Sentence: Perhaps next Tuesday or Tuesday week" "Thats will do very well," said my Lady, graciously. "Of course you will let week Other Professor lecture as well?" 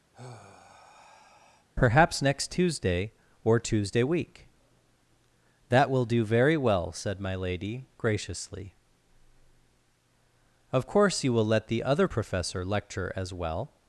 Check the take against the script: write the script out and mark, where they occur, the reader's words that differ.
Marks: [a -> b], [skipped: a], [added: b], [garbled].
Perhaps next Tuesday or Tuesday week" ["Thats -> That] will do very well," said my Lady, graciously. "Of course you will let [week -> the] Other Professor lecture as well?"